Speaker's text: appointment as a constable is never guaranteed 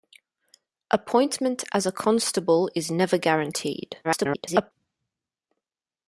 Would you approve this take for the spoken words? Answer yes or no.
no